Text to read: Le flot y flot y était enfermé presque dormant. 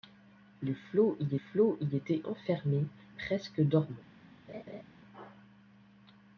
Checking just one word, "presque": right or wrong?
right